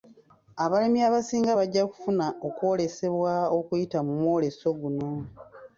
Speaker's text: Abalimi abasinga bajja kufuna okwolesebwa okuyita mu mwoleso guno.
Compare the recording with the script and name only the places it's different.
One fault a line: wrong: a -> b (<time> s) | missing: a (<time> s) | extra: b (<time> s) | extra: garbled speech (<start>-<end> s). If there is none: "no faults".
no faults